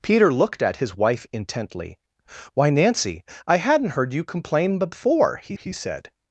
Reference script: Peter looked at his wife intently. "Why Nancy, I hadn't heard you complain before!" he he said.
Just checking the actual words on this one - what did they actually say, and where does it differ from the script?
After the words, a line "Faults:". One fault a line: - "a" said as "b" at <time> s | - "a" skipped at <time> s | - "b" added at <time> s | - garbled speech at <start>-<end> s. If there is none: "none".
Peter looked at his wife intently. "Why Nancy, I hadn't heard you complain before!" he he said.
Faults:
none